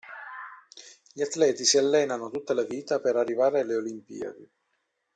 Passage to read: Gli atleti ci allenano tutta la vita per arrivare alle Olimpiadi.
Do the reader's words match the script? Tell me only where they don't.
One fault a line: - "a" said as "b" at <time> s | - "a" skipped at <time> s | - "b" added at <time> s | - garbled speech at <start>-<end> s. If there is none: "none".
- "ci" said as "si" at 1.6 s